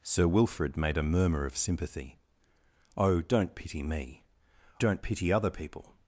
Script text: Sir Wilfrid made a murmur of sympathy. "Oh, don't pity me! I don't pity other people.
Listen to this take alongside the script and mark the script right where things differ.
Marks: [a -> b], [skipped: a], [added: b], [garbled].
Sir Wilfrid made a murmur of sympathy. "Oh, don't pity me! [skipped: I] don't pity other people.